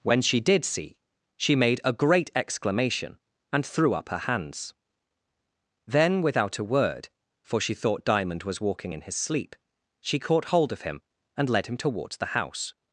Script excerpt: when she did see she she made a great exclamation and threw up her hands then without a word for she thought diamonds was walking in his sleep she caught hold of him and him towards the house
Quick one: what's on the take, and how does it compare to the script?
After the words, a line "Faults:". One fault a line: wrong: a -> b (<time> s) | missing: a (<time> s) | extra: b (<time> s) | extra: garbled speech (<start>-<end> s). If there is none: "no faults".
when she did see she made a great exclamation and threw up her hands then without a word for she thought diamond was walking in his sleep she caught hold of him and led him towards the house
Faults:
missing: she (1.6 s)
wrong: diamonds -> diamond (8.1 s)
extra: led (11.5 s)